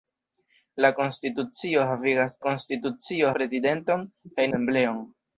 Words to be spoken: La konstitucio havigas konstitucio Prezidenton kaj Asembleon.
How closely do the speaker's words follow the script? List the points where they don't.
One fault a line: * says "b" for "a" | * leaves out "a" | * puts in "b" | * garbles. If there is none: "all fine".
all fine